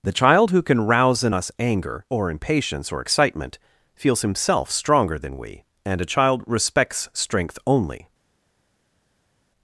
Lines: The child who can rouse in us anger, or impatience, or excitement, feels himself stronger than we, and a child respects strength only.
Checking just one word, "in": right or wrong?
right